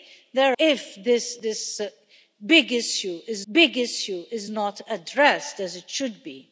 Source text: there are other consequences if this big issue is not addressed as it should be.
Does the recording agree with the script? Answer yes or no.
no